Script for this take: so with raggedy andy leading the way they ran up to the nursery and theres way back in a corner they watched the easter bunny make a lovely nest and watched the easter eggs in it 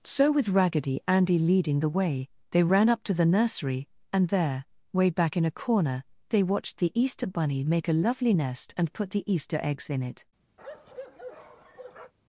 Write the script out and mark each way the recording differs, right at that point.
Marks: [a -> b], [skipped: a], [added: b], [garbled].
so with raggedy andy leading the way they ran up to the nursery and [theres -> there] way back in a corner they watched the easter bunny make a lovely nest and [watched -> put] the easter eggs in it